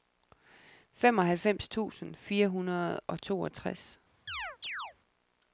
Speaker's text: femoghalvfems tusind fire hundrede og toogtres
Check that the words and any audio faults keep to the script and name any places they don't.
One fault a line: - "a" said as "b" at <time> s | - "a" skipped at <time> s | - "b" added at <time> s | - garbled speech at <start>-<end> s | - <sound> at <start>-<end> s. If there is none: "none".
- chirp at 4.3-4.9 s